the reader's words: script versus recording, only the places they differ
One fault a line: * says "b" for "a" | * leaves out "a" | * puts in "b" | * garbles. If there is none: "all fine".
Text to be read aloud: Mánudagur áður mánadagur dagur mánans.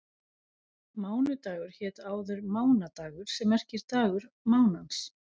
* puts in "hét"
* puts in "sem merkir"